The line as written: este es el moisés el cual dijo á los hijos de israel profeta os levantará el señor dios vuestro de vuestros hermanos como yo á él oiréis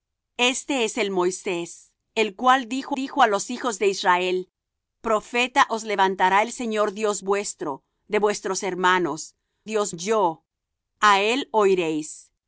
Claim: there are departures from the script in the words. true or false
true